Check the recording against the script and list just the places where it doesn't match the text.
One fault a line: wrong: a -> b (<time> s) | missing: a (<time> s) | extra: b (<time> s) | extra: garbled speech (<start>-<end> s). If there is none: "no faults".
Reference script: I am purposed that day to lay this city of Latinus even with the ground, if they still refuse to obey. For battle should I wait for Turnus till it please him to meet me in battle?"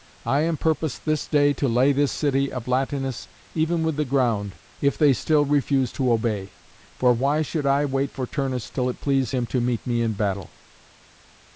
wrong: that -> this (1.1 s)
wrong: battle -> why (7.1 s)